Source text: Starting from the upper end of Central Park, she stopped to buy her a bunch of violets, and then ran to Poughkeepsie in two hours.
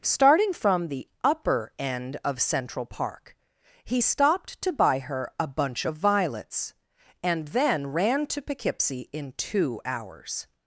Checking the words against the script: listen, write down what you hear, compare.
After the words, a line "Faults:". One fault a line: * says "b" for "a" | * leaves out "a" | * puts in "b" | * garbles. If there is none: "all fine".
Starting from the upper end of Central Park, he stopped to buy her a bunch of violets, and then ran to Poughkeepsie in two hours.
Faults:
* says "he" for "she"